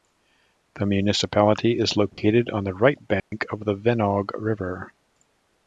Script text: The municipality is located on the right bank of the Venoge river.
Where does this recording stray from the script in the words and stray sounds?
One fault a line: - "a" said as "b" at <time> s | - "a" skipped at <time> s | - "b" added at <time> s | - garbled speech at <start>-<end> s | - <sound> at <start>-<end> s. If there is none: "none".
- dropout at 2.1-2.2 s
- dropout at 3.2-3.3 s